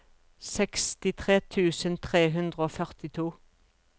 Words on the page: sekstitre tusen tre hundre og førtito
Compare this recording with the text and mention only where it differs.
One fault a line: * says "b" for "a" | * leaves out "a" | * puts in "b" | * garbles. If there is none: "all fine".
all fine